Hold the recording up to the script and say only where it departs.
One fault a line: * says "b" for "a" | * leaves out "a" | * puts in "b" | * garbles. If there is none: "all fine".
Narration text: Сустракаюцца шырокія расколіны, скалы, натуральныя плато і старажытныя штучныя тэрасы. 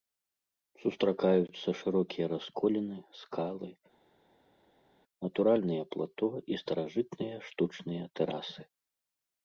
all fine